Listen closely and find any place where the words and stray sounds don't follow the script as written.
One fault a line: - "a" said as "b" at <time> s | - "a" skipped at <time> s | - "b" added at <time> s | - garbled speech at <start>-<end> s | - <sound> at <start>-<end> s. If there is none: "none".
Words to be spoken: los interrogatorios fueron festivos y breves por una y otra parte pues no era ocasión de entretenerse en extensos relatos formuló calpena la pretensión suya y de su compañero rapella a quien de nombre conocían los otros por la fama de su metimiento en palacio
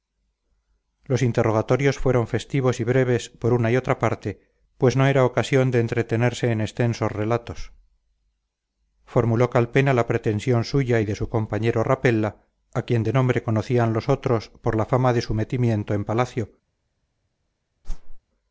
- whoosh at 17.8-18.2 s